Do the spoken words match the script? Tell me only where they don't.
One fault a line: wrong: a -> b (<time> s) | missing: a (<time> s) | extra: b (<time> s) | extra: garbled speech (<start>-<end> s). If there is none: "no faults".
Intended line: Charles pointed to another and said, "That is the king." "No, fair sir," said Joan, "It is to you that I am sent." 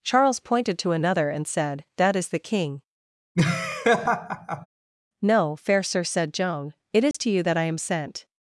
no faults